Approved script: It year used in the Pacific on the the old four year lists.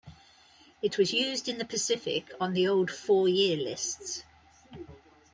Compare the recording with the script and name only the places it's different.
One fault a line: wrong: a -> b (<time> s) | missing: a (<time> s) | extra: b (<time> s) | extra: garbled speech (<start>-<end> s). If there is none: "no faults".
wrong: year -> was (1.0 s)
missing: the (2.7 s)